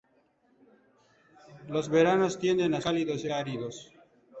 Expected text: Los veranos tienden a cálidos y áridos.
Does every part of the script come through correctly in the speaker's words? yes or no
yes